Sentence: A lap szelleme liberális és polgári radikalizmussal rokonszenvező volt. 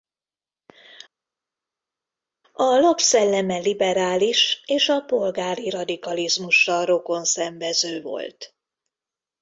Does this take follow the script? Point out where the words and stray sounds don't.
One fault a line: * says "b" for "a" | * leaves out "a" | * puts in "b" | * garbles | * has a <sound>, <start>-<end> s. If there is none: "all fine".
* puts in "a"